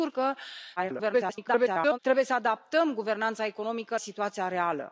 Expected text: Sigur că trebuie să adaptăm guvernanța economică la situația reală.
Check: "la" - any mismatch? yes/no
yes